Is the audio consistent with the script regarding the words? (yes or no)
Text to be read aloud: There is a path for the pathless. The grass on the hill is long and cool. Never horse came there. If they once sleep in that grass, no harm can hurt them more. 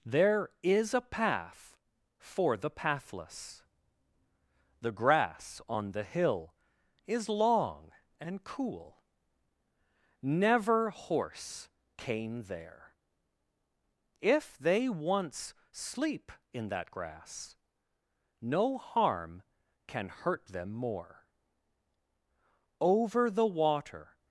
no